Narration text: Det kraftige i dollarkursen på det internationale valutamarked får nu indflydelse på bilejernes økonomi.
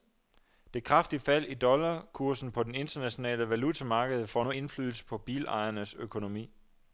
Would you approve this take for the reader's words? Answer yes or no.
no